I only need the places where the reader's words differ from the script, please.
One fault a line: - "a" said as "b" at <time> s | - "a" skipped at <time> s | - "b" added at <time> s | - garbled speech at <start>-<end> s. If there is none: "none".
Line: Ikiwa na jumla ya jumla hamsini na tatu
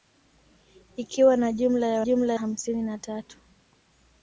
none